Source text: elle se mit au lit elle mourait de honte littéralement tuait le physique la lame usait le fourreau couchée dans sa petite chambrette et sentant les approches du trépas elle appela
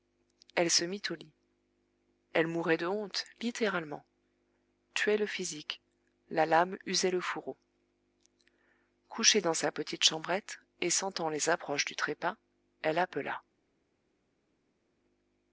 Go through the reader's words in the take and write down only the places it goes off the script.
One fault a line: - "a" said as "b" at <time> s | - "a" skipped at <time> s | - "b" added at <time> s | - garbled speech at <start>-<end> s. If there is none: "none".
none